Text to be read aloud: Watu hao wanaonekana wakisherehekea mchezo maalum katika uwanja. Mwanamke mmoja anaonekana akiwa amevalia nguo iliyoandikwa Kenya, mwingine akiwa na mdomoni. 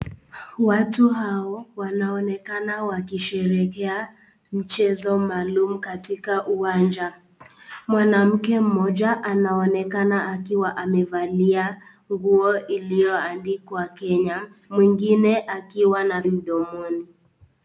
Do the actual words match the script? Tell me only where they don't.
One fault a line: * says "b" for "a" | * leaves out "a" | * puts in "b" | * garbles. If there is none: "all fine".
all fine